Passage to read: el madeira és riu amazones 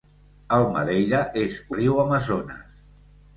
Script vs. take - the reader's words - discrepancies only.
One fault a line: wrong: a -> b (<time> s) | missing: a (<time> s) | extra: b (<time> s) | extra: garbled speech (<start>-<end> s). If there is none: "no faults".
no faults